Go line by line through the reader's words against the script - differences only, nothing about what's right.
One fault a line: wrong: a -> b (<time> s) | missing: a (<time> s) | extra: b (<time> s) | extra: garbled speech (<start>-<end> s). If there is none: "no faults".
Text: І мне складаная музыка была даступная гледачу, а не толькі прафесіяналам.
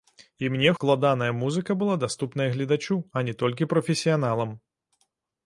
no faults